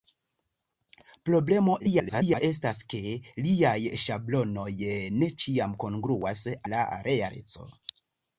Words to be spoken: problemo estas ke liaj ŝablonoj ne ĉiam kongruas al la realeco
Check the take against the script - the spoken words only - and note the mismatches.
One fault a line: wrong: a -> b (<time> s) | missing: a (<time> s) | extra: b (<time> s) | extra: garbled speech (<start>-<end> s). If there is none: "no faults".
extra: garbled speech (1.8-2.4 s)
missing: al (6.4 s)